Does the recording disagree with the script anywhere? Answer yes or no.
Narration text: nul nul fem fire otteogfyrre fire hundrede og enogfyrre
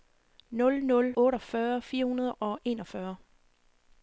yes